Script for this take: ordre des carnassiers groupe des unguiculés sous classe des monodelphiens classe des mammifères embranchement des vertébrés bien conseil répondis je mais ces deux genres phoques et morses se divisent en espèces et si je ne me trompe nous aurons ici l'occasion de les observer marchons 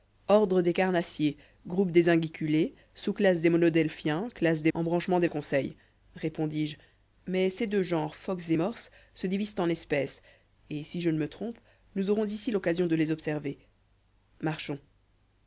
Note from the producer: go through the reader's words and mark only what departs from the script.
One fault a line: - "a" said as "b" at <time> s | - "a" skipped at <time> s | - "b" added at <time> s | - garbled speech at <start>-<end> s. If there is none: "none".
- "mammifères" skipped at 4.7 s
- "vertébrés bien" skipped at 5.3 s